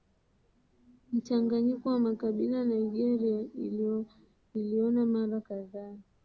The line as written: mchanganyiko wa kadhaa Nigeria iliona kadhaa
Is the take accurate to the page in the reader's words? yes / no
no